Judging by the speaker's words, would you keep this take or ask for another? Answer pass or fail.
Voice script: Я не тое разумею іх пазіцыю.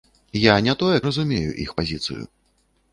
pass